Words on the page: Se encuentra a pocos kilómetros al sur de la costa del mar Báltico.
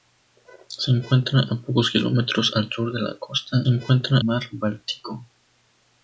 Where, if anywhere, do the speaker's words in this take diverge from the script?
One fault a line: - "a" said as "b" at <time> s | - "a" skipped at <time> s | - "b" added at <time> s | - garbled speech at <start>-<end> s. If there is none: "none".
- "del" said as "encuentra" at 3.7 s